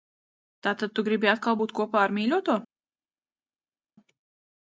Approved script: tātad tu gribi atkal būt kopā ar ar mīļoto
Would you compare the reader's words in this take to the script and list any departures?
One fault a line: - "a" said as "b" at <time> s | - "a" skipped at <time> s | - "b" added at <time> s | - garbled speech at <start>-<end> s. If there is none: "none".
- "ar" skipped at 2.2 s